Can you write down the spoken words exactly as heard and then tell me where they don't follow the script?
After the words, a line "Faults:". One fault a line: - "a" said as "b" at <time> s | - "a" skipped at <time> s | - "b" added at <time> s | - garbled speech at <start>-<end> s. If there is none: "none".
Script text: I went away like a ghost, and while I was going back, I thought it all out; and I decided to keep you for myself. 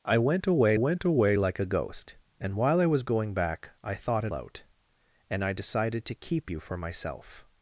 I went away went away like a ghost, and while I was going back, I thought it out; and I decided to keep you for myself.
Faults:
- "went away" added at 0.7 s
- "all" skipped at 4.3 s